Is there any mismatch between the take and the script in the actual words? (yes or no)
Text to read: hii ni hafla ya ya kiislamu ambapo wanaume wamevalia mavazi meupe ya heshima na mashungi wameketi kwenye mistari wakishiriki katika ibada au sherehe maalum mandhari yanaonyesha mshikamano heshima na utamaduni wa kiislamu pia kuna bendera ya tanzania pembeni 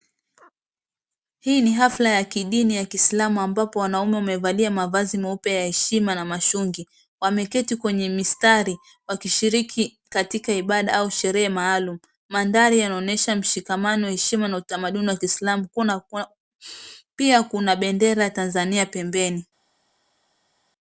yes